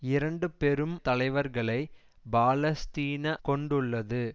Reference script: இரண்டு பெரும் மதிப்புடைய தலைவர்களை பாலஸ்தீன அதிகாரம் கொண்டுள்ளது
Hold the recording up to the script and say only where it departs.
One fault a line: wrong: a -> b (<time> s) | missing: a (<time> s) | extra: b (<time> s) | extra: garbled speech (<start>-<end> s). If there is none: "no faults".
missing: மதிப்புடைய (0.9 s)
missing: அதிகாரம் (3.3 s)